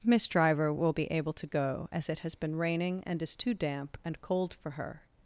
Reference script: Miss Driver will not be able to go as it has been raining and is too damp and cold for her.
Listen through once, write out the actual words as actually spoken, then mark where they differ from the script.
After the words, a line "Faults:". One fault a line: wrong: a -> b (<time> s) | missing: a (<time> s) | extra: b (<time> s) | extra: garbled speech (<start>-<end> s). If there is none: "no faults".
Miss Driver will be able to go as it has been raining and is too damp and cold for her.
Faults:
missing: not (0.9 s)